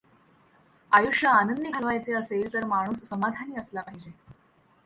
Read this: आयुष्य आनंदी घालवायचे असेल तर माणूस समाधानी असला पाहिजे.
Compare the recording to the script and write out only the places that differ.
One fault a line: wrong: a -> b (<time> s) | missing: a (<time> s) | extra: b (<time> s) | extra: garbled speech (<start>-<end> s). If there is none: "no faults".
no faults